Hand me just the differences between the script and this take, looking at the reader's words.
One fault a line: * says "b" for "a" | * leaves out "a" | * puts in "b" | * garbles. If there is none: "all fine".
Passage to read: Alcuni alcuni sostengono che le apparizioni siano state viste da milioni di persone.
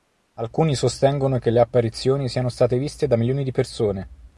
* leaves out "alcuni"